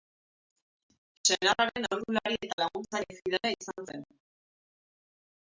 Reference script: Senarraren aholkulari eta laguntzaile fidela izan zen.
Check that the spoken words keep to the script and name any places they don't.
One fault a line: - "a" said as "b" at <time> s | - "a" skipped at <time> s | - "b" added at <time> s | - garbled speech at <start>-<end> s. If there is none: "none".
none